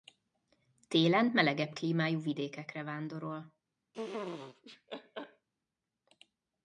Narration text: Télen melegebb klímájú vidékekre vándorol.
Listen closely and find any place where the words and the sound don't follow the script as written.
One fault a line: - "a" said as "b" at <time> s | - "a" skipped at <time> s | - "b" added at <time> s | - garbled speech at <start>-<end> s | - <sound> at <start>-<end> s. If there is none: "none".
- laugh at 3.9-5.5 s